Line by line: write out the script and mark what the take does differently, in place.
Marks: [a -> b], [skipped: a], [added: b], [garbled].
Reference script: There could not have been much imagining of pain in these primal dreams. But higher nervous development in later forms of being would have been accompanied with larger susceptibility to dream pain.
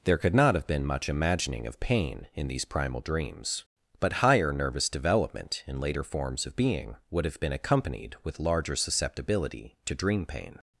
There could not have been much imagining of pain in these primal dreams. But higher nervous development in later forms of being would have been accompanied with larger susceptibility to dream pain.